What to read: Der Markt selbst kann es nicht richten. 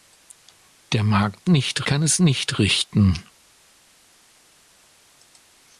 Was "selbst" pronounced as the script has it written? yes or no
no